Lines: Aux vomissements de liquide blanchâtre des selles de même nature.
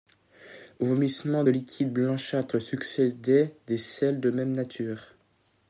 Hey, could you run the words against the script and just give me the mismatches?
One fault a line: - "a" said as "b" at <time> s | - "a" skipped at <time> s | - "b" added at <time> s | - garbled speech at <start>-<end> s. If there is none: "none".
- "succédaient" added at 2.6 s